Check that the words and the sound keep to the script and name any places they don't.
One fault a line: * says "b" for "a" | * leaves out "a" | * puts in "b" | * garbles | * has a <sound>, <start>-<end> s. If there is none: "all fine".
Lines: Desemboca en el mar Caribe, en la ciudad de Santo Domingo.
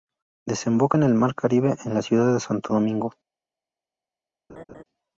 * has a laugh, 4.5-4.8 s